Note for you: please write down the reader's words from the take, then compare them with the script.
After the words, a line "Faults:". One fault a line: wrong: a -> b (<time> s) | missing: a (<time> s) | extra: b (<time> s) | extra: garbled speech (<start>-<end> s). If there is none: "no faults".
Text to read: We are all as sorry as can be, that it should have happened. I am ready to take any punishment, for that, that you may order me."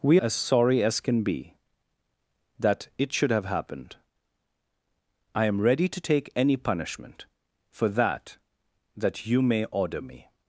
We as sorry as can be, that it should have happened. I am ready to take any punishment, for that, that you may order me."
Faults:
missing: are all (0.2 s)